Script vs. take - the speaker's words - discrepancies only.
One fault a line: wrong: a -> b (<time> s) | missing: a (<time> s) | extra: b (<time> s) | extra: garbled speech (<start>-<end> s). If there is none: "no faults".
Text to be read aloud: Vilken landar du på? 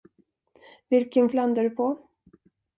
no faults